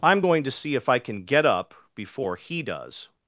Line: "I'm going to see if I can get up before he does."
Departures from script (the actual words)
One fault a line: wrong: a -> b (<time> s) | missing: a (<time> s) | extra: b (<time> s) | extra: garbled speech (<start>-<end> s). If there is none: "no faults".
no faults